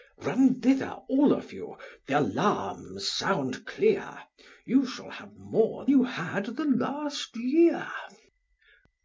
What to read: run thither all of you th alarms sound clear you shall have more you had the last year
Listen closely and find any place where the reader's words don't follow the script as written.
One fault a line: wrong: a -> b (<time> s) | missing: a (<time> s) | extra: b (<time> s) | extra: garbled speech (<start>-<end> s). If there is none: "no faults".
no faults